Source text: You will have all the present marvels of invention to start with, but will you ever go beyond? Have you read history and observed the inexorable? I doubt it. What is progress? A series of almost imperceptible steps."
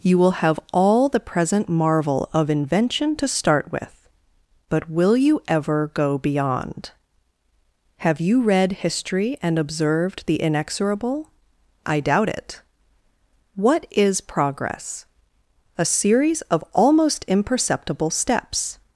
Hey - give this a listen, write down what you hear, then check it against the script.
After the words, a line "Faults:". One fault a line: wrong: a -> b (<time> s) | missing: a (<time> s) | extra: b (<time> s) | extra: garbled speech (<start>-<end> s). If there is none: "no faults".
You will have all the present marvel of invention to start with, but will you ever go beyond? Have you read history and observed the inexorable? I doubt it. What is progress? A series of almost imperceptible steps."
Faults:
wrong: marvels -> marvel (1.7 s)